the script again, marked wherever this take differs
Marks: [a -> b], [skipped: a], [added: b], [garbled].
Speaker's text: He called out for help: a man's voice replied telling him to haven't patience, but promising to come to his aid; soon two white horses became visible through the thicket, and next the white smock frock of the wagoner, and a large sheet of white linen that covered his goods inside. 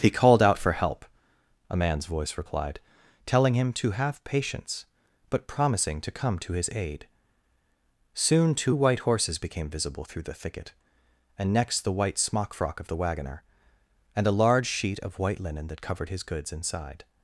He called out for help: a man's voice replied telling him to [haven't -> have] patience, but promising to come to his aid; soon two white horses became visible through the thicket, and next the white smock frock of the wagoner, and a large sheet of white linen that covered his goods inside.